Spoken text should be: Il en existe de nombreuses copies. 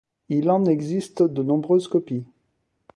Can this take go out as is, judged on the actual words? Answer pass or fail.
pass